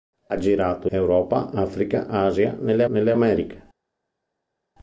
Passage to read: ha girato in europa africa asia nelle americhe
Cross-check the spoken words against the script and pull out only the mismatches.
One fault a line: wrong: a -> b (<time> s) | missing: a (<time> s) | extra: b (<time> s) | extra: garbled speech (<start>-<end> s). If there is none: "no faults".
missing: in (0.9 s)
extra: nelle (2.8 s)